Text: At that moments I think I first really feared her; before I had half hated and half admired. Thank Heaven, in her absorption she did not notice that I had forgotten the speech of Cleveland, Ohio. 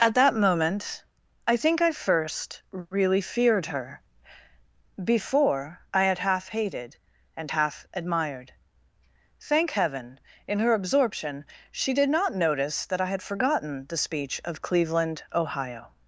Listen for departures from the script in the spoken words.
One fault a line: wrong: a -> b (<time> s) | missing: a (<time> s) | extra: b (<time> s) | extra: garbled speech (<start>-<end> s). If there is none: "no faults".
wrong: moments -> moment (0.3 s)